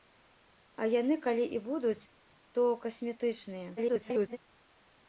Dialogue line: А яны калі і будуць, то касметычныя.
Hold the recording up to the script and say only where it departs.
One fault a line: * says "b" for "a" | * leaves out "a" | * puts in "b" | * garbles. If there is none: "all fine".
* garbles